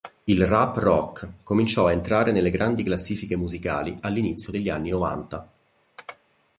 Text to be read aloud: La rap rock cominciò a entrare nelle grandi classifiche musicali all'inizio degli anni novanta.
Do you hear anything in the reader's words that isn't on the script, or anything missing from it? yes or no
yes